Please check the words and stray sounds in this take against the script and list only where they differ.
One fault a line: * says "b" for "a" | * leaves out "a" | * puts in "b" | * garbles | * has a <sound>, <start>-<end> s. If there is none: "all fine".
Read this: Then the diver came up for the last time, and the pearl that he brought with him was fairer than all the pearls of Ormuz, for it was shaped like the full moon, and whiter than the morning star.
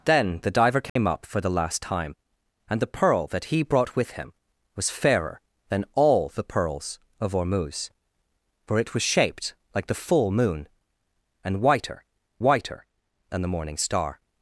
* has a dropout, 0.9-1.0 s
* puts in "whiter"